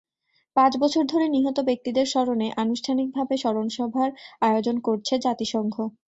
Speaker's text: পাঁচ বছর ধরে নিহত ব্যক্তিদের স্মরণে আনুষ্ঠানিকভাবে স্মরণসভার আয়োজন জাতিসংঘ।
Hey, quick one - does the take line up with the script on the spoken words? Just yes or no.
no